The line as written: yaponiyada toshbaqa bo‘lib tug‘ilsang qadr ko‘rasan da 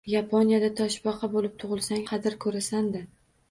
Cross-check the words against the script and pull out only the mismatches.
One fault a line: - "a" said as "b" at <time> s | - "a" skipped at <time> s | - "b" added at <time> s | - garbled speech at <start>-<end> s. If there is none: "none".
none